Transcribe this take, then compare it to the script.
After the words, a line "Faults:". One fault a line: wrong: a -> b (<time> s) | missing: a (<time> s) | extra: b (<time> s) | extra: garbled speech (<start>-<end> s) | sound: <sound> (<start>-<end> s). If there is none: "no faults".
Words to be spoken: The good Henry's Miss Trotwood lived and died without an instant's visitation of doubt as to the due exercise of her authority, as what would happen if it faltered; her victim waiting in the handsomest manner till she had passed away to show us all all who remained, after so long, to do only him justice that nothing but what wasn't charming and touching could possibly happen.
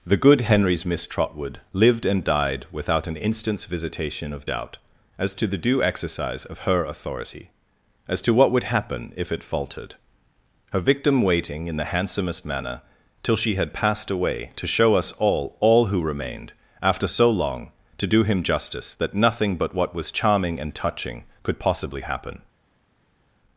The good Henry's Miss Trotwood lived and died without an instant's visitation of doubt as to the due exercise of her authority, as to what would happen if it faltered; her victim waiting in the handsomest manner till she had passed away to show us all all who remained, after so long, to do him justice that nothing but what was charming and touching could possibly happen.
Faults:
extra: to (8.2 s)
missing: only (18.2 s)
wrong: wasn't -> was (20.0 s)